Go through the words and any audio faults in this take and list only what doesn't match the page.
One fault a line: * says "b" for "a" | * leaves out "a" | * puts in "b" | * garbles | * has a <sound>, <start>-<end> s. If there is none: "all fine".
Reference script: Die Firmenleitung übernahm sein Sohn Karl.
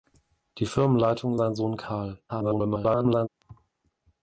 * leaves out "übernahm"
* garbles
* has a thud, 3.4-3.7 s